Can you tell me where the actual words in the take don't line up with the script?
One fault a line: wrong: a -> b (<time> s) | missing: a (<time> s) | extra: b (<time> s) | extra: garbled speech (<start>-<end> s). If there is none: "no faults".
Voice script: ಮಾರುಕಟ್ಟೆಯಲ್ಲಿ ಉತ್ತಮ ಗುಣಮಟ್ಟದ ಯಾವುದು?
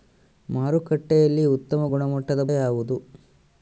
no faults